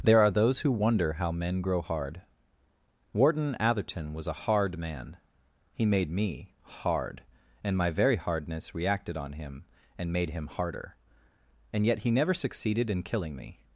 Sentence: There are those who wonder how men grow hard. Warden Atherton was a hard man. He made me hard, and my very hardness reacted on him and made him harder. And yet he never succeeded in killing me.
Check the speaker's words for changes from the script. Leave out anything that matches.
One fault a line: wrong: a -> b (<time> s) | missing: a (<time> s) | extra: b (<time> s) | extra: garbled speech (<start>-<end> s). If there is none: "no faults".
no faults